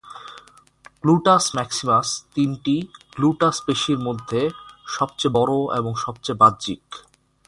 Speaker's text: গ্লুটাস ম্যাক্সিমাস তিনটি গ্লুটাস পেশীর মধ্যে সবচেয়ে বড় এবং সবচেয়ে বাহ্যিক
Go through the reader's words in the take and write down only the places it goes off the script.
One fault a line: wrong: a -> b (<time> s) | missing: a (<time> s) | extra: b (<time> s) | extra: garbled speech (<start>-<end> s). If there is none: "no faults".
no faults